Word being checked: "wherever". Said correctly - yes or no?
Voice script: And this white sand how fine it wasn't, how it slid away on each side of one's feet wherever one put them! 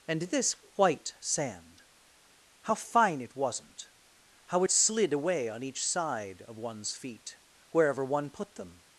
yes